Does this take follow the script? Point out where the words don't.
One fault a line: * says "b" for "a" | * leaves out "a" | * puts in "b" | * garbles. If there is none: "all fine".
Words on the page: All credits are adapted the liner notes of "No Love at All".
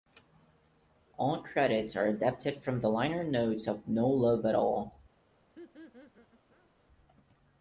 * puts in "from"